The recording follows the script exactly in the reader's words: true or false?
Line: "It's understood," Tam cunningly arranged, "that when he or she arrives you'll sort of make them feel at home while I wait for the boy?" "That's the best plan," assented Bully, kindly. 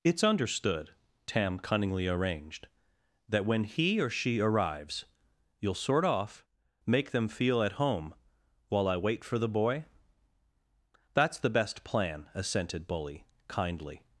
false